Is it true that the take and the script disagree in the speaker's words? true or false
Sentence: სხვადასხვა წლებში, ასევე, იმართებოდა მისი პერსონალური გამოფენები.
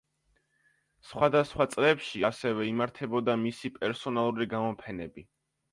false